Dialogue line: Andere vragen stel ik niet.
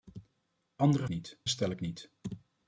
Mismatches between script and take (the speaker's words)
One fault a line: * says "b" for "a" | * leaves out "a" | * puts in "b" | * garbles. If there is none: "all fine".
* says "niet" for "vragen"